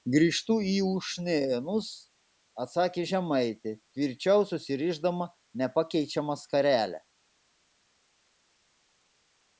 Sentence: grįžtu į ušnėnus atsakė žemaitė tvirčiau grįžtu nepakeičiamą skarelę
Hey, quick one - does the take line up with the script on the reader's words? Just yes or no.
no